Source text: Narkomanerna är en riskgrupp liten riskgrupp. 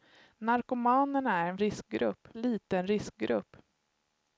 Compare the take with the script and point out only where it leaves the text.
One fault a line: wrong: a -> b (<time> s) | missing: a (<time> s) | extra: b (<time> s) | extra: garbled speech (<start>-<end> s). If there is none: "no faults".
no faults